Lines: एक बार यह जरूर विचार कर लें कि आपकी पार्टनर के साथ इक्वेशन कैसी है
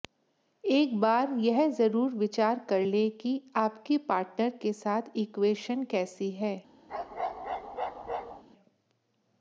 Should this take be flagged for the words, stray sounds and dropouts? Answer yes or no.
yes